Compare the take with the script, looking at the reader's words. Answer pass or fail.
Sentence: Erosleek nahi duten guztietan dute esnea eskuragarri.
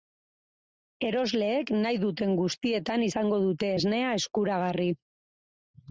fail